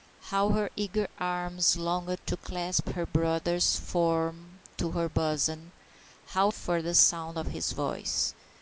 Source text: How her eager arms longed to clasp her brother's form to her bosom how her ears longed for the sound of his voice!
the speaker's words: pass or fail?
fail